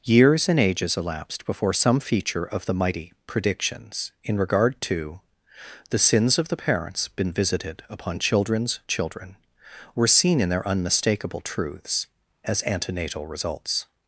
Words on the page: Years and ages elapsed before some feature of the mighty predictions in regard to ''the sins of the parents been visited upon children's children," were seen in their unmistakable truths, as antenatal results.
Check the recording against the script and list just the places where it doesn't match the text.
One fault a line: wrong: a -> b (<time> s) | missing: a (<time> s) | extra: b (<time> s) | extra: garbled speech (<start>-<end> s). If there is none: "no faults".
no faults